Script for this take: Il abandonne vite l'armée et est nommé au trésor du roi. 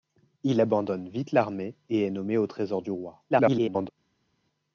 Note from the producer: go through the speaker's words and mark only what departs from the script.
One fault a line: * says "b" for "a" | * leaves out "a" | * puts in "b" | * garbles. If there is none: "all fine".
* garbles